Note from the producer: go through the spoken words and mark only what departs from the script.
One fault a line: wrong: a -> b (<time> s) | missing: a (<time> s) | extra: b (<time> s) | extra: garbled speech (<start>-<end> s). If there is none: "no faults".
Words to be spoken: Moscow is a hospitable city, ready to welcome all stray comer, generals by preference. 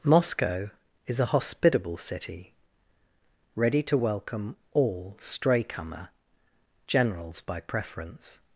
no faults